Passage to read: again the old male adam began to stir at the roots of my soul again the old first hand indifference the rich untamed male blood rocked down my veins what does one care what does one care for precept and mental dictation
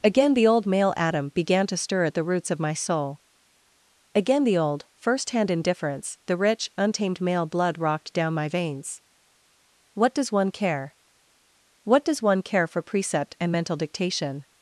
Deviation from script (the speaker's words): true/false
false